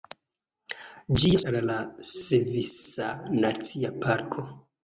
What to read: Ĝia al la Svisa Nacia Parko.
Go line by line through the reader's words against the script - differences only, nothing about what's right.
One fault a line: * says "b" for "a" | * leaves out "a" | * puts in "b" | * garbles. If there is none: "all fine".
all fine